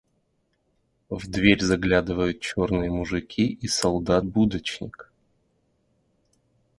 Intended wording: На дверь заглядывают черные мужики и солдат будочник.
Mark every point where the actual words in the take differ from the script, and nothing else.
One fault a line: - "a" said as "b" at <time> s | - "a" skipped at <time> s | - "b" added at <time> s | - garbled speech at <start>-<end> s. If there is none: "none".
- "На" said as "В" at 1.1 s